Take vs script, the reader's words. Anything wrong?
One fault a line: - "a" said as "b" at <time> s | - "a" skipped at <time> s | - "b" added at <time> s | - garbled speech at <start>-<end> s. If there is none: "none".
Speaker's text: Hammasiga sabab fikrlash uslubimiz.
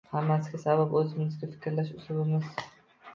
- "o‘zimizning" added at 1.0 s